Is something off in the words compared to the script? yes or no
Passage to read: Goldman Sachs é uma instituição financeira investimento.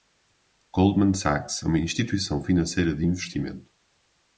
yes